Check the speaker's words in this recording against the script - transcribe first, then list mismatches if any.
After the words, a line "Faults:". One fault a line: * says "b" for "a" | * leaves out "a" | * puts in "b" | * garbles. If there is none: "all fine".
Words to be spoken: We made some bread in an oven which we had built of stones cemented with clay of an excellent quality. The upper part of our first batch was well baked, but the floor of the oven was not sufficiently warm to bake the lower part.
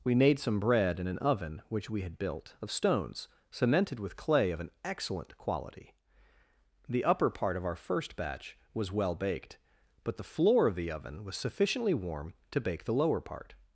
We made some bread in an oven which we had built of stones cemented with clay of an excellent quality. The upper part of our first batch was well baked, but the floor of the oven was sufficiently warm to bake the lower part.
Faults:
* leaves out "not"